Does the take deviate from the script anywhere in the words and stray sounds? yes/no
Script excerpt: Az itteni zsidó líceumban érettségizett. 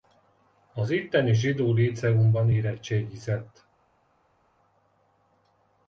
no